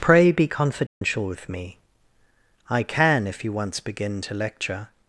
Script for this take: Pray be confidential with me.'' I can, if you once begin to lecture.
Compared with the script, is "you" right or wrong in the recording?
right